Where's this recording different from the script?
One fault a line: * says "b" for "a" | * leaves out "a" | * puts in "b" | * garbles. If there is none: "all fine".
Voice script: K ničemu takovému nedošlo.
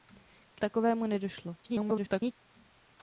* leaves out "ničemu"
* garbles